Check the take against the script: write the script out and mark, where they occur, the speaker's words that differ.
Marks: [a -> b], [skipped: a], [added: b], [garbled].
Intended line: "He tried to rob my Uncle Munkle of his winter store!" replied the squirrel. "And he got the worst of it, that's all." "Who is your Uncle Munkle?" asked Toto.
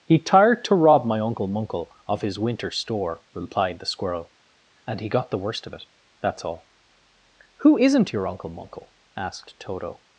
"He [tried -> tired] to rob my Uncle Munkle of his winter store!" replied the squirrel. "And he got the worst of it, that's all." "Who [is -> isn't] your Uncle Munkle?" asked Toto.